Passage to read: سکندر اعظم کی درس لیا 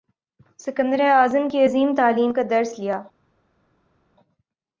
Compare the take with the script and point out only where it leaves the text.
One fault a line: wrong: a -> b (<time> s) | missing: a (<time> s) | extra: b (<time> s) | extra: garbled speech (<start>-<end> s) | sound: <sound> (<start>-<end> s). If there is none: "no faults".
extra: عظیم تعلیم کا (1.6 s)